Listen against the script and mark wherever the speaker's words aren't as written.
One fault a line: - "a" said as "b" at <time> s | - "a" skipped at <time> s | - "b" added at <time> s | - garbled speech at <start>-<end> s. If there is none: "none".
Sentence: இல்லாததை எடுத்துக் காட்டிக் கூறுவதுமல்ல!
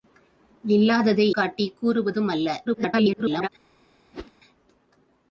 - "எடுத்துக்" skipped at 1.4 s
- garbled speech at 2.7-3.5 s